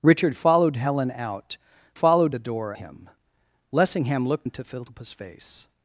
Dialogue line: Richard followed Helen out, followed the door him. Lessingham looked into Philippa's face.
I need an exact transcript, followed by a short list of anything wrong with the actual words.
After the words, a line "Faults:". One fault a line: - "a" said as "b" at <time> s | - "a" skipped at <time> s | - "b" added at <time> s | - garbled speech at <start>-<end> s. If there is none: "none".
Richard followed Helen out, followed the door him. Lessingham looked into Philippa's face.
Faults:
none